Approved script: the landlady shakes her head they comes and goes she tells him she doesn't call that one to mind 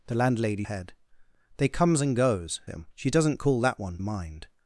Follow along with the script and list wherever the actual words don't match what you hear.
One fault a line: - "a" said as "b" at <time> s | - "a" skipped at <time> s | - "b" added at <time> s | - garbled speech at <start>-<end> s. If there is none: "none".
- "shakes her" skipped at 0.6 s
- "she tells" skipped at 2.6 s
- "to" skipped at 4.0 s